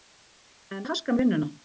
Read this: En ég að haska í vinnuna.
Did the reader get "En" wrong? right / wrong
right